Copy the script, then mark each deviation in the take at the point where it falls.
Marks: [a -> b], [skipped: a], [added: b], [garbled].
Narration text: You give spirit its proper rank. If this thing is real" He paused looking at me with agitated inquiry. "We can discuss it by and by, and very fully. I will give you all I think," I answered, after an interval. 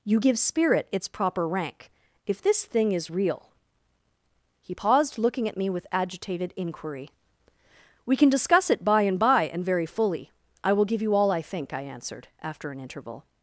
You give spirit its proper rank. If this thing is real" He paused looking at me with agitated inquiry. "We can discuss it by and by, and very fully. I will give you all I think," I answered, after an interval.